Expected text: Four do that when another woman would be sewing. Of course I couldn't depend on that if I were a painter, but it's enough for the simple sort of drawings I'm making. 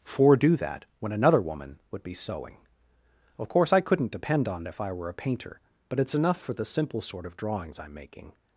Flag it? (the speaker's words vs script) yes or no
yes